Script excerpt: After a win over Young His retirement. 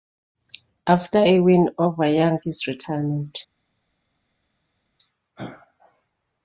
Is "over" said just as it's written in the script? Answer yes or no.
yes